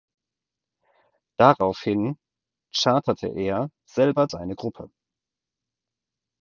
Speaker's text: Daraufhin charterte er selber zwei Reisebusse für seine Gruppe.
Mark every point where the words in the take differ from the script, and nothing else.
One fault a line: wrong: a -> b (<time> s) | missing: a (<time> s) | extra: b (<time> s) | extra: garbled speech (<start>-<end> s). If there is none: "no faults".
missing: zwei Reisebusse für (4.3 s)